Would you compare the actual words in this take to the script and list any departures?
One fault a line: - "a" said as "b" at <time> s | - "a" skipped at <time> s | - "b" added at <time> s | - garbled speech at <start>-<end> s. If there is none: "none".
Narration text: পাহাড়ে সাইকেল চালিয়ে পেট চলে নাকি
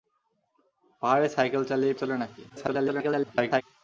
- "পেট" skipped at 1.9 s
- garbled speech at 2.5-3.6 s